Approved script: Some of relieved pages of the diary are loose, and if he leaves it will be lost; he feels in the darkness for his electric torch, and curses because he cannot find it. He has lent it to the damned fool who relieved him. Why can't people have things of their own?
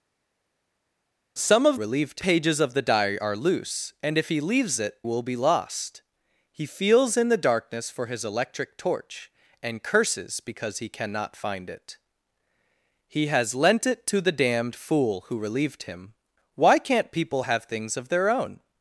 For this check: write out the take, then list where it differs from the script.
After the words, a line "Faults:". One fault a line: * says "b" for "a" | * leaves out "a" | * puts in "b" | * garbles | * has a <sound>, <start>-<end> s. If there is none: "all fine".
Some of relieved pages of the diary are loose, and if he leaves it will be lost; he feels in the darkness for his electric torch, and curses because he cannot find it. He has lent it to the damned fool who relieved him. Why can't people have things of their own?
Faults:
all fine